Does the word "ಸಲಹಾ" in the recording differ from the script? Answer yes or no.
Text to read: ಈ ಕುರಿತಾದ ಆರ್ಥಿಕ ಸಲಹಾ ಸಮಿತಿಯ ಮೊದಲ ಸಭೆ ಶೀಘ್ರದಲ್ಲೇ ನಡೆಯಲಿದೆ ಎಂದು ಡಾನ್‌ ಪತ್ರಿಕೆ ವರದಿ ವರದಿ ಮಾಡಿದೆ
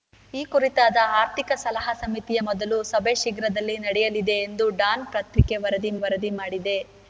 no